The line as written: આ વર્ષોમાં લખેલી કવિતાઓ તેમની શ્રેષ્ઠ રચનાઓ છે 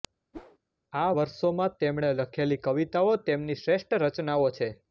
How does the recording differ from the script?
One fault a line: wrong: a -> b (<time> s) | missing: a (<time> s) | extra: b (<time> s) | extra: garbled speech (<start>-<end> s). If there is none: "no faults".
extra: તેમણે (1.8 s)